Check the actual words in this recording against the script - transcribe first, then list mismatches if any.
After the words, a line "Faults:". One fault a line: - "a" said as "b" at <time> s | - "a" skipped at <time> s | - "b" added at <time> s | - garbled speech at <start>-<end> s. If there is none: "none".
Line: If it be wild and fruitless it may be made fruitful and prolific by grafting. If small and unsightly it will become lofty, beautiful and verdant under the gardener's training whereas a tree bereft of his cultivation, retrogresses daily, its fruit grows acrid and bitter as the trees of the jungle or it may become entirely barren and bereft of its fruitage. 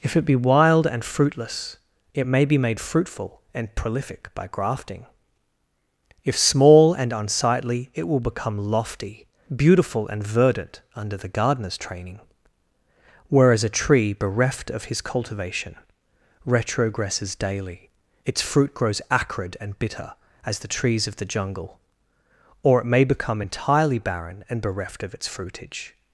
If it be wild and fruitless it may be made fruitful and prolific by grafting. If small and unsightly it will become lofty, beautiful and verdant under the gardener's training whereas a tree bereft of his cultivation, retrogresses daily, its fruit grows acrid and bitter as the trees of the jungle or it may become entirely barren and bereft of its fruitage.
Faults:
none